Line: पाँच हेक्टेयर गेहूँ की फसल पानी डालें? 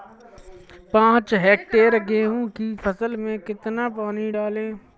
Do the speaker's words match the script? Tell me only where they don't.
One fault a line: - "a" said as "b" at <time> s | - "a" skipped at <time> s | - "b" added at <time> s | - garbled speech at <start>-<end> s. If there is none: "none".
- "में कितना" added at 3.2 s